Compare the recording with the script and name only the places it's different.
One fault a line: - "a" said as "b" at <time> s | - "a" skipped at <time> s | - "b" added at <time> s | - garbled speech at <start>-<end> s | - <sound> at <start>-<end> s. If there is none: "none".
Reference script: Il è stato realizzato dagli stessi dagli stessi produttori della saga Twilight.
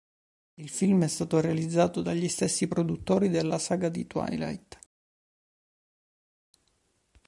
- "film" added at 0.6 s
- "dagli stessi" skipped at 2.7 s
- "di" added at 3.9 s